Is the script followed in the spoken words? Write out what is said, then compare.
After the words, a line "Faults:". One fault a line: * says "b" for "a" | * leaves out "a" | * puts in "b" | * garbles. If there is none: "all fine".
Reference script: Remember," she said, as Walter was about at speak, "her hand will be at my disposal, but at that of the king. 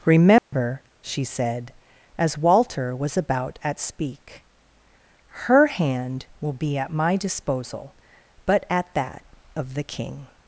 Remember," she said, as Walter was about at speak, "her hand will be at my disposal, but at that of the king.
Faults:
all fine